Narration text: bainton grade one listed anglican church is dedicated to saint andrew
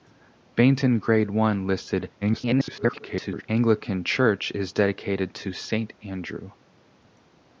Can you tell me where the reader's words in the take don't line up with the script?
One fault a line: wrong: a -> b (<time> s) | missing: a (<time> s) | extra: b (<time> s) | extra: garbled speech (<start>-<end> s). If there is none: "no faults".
extra: garbled speech (2.2-3.4 s)